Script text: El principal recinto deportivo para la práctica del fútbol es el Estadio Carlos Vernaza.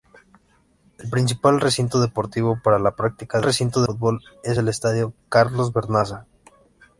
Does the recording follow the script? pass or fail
fail